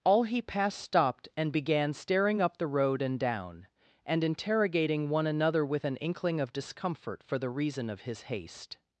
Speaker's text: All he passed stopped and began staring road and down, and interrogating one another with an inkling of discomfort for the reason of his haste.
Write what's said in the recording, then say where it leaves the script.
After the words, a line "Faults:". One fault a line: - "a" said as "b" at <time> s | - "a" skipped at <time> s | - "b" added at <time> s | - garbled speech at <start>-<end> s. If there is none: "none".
All he passed stopped and began staring up the road and down, and interrogating one another with an inkling of discomfort for the reason of his haste.
Faults:
- "up the" added at 2.4 s